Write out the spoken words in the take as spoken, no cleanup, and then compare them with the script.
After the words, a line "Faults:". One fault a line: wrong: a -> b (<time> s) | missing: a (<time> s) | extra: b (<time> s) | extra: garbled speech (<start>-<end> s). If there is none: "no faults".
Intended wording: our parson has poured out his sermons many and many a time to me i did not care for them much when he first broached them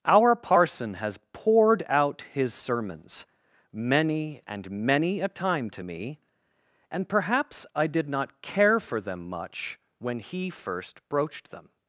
our parson has poured out his sermons many and many a time to me and perhaps i did not care for them much when he first broached them
Faults:
extra: and perhaps (6.9 s)